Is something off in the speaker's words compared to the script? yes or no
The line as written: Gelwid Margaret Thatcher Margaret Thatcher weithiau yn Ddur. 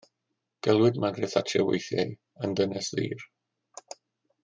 yes